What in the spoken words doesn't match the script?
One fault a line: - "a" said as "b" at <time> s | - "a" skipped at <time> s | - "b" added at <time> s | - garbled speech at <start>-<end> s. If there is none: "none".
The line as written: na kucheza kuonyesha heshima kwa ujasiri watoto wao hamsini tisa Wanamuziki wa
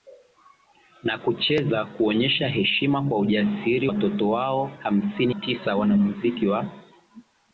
none